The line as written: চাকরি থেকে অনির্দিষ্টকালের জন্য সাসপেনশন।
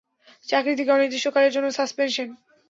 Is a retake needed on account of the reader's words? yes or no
no